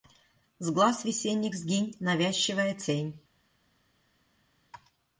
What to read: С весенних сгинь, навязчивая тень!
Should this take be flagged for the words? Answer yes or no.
yes